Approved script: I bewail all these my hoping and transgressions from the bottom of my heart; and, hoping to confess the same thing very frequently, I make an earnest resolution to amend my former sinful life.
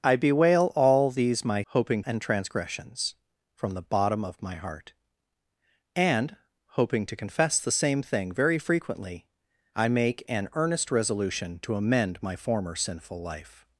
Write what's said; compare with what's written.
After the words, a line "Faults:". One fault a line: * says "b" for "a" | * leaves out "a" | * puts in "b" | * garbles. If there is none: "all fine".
I bewail all these my hoping and transgressions from the bottom of my heart; and, hoping to confess the same thing very frequently, I make an earnest resolution to amend my former sinful life.
Faults:
all fine